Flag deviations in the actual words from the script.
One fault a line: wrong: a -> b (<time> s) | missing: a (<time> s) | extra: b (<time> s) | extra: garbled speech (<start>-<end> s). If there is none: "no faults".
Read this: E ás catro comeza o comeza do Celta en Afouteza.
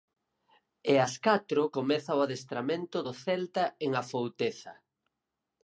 wrong: comeza -> adestramento (2.3 s)